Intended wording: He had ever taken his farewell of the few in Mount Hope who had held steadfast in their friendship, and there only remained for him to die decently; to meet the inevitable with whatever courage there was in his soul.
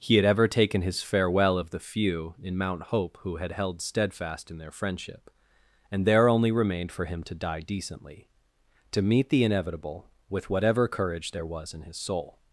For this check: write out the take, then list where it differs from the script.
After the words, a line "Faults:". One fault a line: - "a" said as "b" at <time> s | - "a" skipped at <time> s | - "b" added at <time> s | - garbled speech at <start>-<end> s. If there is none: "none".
He had ever taken his farewell of the few in Mount Hope who had held steadfast in their friendship, and there only remained for him to die decently; to meet the inevitable with whatever courage there was in his soul.
Faults:
none